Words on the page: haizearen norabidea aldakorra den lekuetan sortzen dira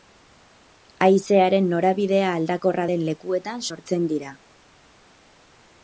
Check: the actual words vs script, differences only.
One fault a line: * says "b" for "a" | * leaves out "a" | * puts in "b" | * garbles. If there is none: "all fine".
all fine